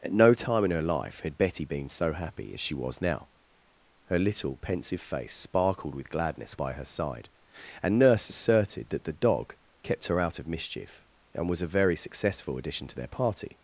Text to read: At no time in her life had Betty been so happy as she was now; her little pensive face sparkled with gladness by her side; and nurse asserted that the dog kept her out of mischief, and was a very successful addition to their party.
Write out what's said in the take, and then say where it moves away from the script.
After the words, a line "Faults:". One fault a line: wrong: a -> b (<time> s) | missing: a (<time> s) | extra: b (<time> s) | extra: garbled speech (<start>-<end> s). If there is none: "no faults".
At no time in her life had Betty been so happy as she was now; her little pensive face sparkled with gladness by her side; and nurse asserted that the dog kept her out of mischief, and was a very successful addition to their party.
Faults:
no faults